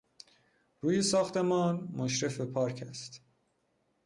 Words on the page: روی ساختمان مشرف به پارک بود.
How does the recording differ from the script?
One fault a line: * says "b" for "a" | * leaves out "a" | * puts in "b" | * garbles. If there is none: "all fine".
* says "است" for "بود"